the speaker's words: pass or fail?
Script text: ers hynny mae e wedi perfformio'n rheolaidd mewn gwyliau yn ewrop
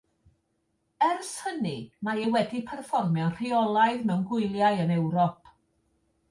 pass